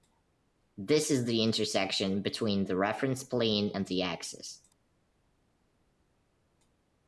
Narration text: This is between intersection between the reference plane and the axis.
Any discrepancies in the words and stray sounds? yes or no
yes